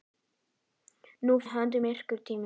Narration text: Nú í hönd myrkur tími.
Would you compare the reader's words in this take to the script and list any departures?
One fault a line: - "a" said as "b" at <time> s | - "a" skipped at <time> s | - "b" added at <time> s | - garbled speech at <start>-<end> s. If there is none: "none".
none